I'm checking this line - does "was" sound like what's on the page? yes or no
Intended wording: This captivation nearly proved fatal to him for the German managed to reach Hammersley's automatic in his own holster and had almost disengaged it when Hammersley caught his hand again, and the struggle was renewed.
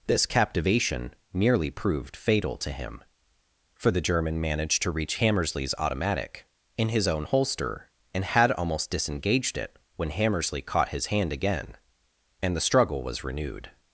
yes